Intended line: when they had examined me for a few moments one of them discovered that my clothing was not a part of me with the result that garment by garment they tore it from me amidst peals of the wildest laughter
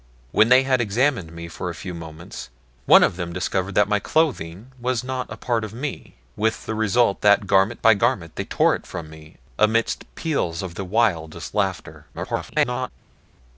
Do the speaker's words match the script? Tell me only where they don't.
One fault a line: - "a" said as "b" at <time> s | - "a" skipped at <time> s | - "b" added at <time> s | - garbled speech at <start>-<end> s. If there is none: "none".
- garbled speech at 12.1-12.9 s